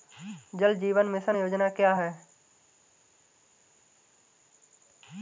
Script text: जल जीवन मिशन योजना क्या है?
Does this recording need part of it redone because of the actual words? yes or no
no